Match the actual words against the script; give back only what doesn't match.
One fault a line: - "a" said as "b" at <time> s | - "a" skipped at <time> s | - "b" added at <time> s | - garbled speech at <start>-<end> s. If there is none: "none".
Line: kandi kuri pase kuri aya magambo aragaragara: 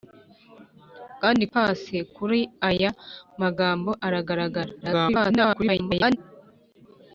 - "kuri" skipped at 1.4 s
- garbled speech at 4.8-6.2 s